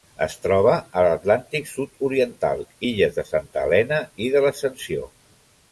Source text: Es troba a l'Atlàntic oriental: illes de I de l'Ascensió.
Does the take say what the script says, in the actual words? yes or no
no